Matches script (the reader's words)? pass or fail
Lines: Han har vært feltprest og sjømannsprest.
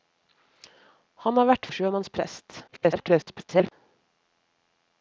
fail